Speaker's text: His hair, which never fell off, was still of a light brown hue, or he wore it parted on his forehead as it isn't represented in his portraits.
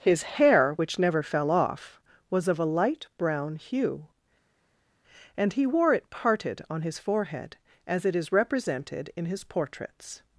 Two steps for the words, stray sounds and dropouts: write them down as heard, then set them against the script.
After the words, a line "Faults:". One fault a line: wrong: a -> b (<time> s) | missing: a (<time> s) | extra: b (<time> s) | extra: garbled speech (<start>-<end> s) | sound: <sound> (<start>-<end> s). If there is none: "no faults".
His hair, which never fell off, was of a light brown hue, and he wore it parted on his forehead as it is represented in his portraits.
Faults:
missing: still (2.5 s)
wrong: or -> and (5.4 s)
wrong: isn't -> is (8.1 s)